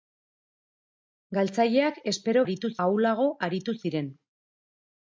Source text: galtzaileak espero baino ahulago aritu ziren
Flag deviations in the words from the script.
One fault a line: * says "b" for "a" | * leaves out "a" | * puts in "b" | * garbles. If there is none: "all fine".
* says "aritu" for "baino"